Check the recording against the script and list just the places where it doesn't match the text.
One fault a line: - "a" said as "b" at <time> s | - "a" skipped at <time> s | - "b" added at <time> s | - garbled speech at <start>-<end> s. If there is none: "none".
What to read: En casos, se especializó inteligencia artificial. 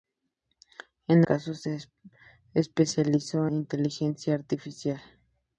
none